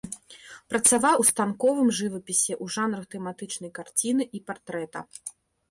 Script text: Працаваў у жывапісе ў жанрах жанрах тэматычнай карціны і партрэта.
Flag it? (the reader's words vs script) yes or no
yes